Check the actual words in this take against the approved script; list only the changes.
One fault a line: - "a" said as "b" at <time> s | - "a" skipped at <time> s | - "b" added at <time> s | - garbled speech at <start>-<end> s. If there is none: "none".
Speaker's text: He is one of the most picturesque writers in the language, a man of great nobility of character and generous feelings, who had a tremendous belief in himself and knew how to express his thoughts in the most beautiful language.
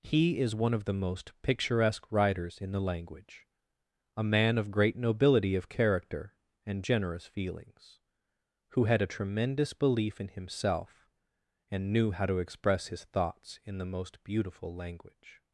none